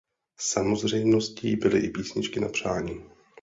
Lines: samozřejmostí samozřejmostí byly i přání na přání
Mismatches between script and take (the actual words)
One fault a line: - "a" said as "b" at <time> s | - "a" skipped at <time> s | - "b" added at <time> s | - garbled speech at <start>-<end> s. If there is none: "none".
- "samozřejmostí" skipped at 1.6 s
- "přání" said as "písničky" at 1.9 s